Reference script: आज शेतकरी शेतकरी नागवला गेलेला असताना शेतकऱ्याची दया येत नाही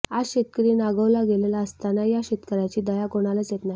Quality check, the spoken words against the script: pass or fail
fail